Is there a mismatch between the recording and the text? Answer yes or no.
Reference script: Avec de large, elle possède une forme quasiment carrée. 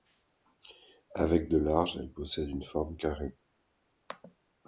yes